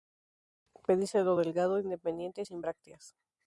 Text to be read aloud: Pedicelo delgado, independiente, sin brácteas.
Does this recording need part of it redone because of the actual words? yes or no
no